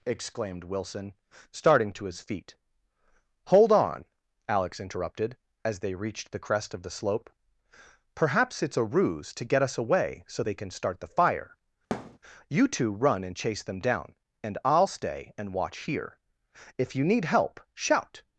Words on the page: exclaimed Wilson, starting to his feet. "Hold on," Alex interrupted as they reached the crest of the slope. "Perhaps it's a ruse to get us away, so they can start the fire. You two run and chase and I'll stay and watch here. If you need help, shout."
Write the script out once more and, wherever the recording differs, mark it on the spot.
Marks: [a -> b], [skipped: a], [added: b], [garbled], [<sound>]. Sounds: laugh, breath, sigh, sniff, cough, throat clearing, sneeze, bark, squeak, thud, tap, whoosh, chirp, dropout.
exclaimed Wilson, starting to his feet. "Hold on," Alex interrupted as they reached the crest of the slope. "Perhaps it's a ruse to get us away, so they can start the fire. [thud] You two run and chase [added: them down] and I'll stay and watch here. If you need help, shout."